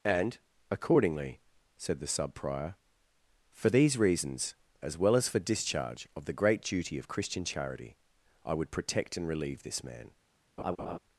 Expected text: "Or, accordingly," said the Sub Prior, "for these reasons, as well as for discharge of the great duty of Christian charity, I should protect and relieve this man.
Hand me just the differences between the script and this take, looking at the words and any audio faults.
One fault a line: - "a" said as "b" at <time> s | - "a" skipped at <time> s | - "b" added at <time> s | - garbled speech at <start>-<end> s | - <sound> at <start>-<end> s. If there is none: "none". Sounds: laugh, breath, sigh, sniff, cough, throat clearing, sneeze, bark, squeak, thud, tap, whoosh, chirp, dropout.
- "Or" said as "And" at 0.0 s
- "should" said as "would" at 8.6 s
- laugh at 10.6-11.0 s